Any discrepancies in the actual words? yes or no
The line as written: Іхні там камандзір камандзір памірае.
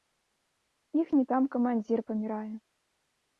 yes